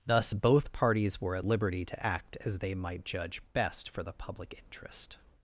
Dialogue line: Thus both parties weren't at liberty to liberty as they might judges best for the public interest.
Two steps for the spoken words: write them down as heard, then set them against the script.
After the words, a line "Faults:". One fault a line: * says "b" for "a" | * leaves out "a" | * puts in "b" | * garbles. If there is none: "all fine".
Thus both parties were at liberty to act as they might judge best for the public interest.
Faults:
* says "were" for "weren't"
* says "act" for "liberty"
* says "judge" for "judges"